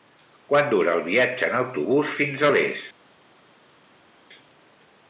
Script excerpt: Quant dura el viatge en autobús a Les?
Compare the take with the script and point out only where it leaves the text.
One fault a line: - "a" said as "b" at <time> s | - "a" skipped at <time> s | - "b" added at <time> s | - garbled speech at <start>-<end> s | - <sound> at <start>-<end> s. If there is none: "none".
- "fins" added at 2.2 s